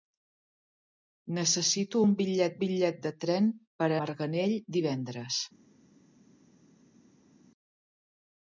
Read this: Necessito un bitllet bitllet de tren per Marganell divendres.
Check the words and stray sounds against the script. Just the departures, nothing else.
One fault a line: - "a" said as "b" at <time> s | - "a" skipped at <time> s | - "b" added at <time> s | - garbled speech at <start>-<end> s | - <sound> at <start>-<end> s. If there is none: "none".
none